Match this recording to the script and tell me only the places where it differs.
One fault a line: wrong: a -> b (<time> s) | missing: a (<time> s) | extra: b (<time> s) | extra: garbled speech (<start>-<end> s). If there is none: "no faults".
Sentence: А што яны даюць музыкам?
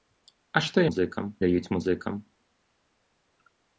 wrong: яны -> музыкам (0.9 s)